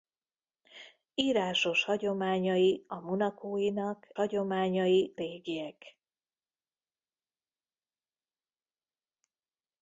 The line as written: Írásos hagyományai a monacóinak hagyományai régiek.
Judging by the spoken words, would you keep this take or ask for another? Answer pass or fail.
pass